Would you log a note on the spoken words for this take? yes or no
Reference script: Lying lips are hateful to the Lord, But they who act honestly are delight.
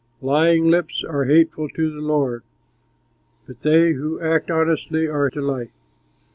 no